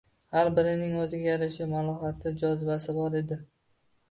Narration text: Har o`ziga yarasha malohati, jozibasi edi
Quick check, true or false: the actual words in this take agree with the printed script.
false